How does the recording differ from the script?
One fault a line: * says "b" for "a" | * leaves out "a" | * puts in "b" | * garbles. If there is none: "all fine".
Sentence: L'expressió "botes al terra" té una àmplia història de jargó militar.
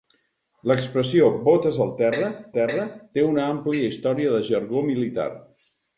* puts in "terra"